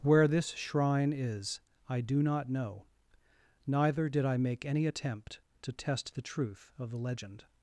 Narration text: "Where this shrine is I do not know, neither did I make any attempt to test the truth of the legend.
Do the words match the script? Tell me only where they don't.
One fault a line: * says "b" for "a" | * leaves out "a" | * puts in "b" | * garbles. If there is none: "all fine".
all fine